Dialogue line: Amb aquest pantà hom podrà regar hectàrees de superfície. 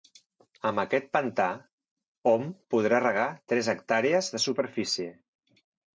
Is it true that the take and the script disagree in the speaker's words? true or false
true